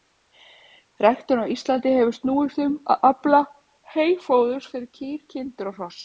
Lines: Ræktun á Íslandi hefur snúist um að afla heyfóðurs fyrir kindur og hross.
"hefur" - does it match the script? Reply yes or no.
yes